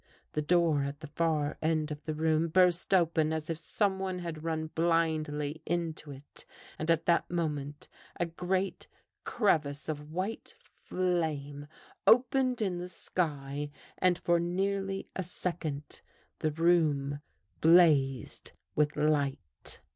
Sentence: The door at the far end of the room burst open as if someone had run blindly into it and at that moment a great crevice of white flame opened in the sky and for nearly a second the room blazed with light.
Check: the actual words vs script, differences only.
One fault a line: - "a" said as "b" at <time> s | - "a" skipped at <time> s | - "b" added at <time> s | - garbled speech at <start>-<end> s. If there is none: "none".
none